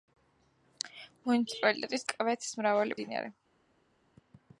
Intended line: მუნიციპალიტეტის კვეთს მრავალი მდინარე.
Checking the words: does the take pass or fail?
pass